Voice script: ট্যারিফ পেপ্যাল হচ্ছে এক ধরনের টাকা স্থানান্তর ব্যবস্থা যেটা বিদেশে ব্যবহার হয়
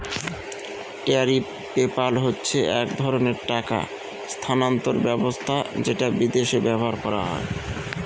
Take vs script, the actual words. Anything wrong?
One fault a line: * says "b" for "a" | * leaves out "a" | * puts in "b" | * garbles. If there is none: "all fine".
* puts in "করা"